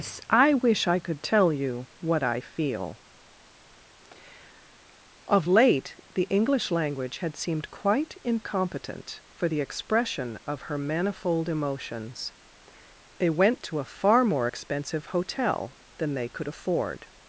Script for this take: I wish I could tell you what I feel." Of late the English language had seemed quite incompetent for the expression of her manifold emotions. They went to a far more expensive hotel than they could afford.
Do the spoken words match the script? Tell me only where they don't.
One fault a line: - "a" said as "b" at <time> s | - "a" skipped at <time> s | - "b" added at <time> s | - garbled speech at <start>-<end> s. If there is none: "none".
none